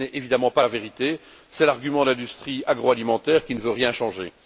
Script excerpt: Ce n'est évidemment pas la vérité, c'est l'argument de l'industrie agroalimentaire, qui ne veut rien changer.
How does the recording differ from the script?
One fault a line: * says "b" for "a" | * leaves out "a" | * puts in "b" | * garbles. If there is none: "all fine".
all fine